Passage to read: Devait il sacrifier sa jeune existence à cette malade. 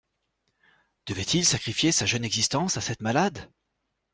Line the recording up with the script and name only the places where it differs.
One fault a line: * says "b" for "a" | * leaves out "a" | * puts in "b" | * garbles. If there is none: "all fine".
all fine